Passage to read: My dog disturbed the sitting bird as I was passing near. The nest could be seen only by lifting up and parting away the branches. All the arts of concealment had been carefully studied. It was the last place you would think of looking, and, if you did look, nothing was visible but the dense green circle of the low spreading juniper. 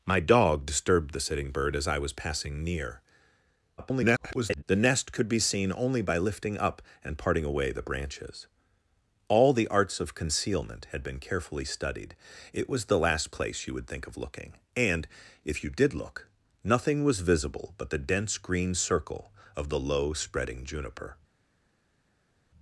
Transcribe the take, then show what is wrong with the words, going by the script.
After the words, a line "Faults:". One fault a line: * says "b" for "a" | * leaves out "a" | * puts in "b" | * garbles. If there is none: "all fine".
My dog disturbed the sitting bird as I was passing near. [garbled] The nest could be seen only by lifting up and parting away the branches. All the arts of concealment had been carefully studied. It was the last place you would think of looking, and, if you did look, nothing was visible but the dense green circle of the low spreading juniper.
Faults:
* garbles